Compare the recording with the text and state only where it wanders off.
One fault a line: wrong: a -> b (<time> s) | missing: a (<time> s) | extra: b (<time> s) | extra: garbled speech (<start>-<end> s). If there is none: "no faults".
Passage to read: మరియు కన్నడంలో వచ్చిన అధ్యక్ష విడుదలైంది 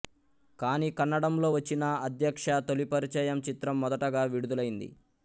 wrong: మరియు -> కానీ (0.6 s)
extra: తొలిపరిచయం చిత్రం మొదటగా (2.7 s)